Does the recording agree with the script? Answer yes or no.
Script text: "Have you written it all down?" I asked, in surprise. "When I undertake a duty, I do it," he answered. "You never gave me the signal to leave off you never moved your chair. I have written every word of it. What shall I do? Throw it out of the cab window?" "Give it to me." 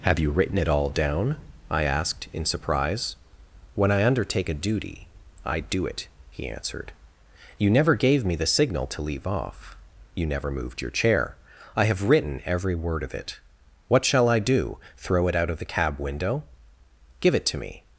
yes